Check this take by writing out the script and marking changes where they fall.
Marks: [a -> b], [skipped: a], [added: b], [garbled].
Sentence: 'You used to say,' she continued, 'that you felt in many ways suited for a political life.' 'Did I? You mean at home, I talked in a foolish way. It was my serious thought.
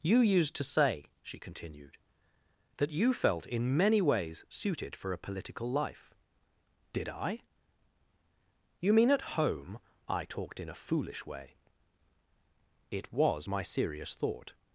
'You used to say,' she continued, 'that you felt in many ways suited for a political life.' 'Did I? You mean at home, I talked in a foolish way. It was my serious thought.